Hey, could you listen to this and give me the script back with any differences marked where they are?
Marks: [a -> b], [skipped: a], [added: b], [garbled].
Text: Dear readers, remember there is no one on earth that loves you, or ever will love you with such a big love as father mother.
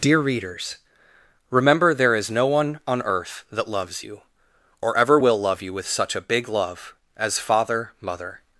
Dear readers, remember there is no one on earth that loves you, or ever will love you with such a big love as father mother.